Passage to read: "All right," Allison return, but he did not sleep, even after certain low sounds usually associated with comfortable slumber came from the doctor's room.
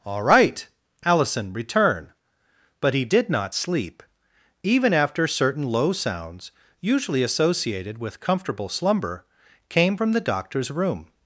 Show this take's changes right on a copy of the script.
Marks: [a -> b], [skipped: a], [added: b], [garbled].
"All right," Allison return, but he did not sleep, even after certain low sounds usually associated with comfortable slumber came from the doctor's room.